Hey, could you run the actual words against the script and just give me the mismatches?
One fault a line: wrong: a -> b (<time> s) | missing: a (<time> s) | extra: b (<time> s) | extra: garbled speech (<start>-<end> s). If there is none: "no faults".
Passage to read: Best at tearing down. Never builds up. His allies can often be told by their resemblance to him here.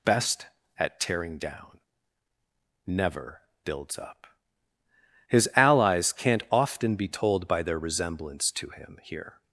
wrong: can -> can't (6.1 s)